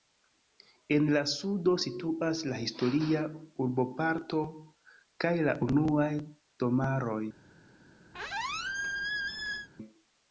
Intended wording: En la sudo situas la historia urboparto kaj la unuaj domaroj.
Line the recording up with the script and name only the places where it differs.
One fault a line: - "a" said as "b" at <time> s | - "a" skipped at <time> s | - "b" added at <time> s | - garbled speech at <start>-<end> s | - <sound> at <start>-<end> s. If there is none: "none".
- squeak at 8.1-9.7 s